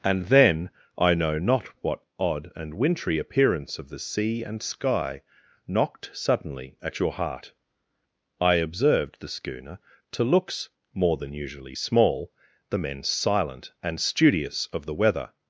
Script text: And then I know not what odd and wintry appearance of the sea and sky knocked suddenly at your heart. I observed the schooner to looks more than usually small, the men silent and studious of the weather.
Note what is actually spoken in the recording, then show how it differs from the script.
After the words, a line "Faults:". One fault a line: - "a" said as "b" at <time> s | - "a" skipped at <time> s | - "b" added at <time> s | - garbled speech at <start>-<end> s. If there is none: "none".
And then I know not what odd and wintry appearance of the sea and sky knocked suddenly at your heart. I observed the schooner to looks more than usually small, the men silent and studious of the weather.
Faults:
none